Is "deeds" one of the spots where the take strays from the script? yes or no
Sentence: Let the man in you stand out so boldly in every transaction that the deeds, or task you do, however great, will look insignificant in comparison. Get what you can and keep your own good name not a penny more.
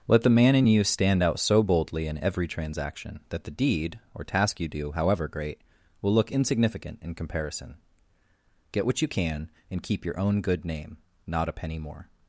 yes